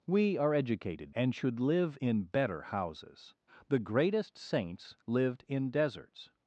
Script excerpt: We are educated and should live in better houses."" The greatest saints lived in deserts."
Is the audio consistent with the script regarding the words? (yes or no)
yes